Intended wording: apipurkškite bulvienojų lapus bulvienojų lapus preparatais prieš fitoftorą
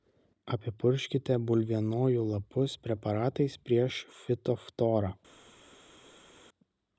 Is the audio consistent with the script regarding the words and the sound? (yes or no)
no